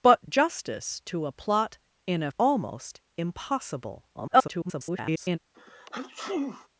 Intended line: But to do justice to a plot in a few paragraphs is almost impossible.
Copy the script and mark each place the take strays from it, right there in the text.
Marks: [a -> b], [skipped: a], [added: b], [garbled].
But [skipped: to do] justice to a plot in a [skipped: few paragraphs is] almost impossible. [garbled]